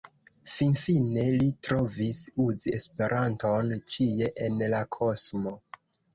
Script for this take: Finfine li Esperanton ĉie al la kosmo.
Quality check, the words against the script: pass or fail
fail